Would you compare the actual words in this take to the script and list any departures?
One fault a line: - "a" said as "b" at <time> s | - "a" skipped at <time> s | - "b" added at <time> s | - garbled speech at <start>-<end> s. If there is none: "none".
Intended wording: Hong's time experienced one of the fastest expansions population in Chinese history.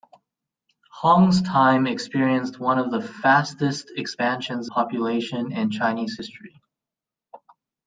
none